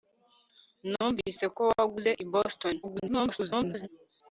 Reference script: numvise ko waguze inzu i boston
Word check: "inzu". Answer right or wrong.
wrong